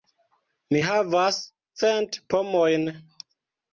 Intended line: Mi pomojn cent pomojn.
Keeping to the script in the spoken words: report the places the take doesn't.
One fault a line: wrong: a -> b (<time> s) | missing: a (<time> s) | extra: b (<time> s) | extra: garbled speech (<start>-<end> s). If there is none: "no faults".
wrong: pomojn -> havas (0.9 s)